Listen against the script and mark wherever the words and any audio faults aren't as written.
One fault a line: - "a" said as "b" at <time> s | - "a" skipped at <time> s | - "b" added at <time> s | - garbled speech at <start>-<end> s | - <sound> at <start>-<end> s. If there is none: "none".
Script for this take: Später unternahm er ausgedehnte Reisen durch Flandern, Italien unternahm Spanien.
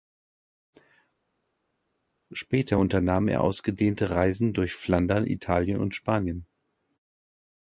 - "unternahm" said as "und" at 5.8 s